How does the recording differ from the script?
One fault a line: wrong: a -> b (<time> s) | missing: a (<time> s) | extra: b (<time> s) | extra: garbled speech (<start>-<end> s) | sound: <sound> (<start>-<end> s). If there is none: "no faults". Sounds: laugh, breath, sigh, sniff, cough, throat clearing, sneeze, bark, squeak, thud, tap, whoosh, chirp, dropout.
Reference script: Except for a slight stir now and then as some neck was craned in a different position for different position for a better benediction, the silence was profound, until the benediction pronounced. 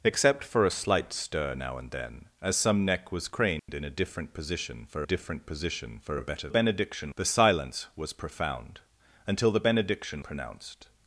sound: dropout (3.6-3.7 s)